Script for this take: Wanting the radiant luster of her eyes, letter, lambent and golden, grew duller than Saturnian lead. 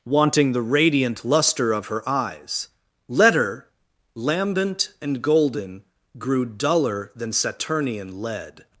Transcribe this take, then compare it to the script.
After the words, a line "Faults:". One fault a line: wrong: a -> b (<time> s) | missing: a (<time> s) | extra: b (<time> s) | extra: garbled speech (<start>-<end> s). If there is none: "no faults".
Wanting the radiant luster of her eyes, letter, lambent and golden, grew duller than Saturnian lead.
Faults:
no faults